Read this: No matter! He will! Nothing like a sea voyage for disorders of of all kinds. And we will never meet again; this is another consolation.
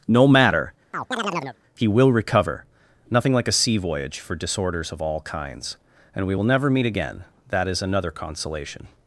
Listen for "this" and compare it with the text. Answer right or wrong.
wrong